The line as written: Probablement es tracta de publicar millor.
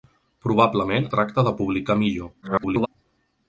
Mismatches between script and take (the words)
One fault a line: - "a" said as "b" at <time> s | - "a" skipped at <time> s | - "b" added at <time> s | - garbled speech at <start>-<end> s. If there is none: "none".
- "es" skipped at 1.1 s
- garbled speech at 2.4-2.9 s